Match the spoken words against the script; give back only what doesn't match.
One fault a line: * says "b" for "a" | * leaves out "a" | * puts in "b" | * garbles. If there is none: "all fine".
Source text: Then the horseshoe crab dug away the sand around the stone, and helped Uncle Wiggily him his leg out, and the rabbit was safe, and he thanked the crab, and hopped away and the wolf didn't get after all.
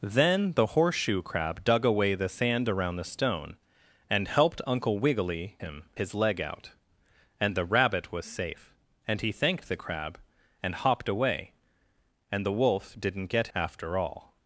all fine